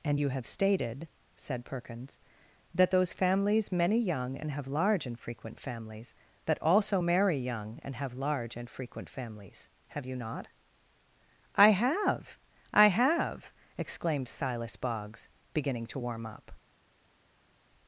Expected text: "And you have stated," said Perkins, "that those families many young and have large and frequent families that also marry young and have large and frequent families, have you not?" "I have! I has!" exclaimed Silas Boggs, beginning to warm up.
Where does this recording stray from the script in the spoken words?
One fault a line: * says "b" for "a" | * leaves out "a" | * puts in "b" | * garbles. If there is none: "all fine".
* says "have" for "has"